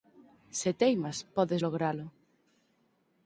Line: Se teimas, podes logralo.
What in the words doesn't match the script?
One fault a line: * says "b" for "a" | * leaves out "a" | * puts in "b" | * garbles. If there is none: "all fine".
all fine